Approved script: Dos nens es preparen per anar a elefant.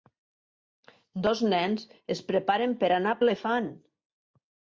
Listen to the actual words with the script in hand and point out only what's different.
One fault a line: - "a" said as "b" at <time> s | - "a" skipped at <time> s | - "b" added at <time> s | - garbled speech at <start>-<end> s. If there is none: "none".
none